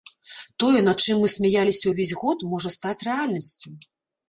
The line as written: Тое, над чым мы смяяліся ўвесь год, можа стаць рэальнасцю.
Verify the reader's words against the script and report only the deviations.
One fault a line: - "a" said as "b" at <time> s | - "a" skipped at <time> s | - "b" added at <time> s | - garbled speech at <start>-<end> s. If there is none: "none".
none